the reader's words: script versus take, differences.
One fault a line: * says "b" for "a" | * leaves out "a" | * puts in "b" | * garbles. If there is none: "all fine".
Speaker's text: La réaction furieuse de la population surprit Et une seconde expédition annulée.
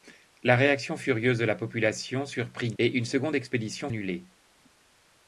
all fine